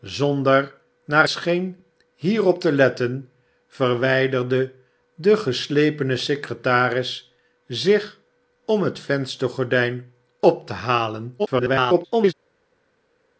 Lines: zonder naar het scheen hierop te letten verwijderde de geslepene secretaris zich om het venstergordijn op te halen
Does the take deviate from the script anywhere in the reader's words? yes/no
yes